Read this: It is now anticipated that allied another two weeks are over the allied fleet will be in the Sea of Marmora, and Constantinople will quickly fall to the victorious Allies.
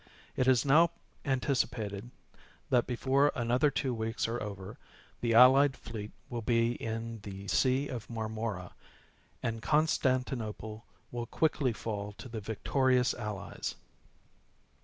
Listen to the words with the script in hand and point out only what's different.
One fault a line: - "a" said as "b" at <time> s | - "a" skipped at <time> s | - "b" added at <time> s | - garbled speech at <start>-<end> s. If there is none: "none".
- "allied" said as "before" at 2.9 s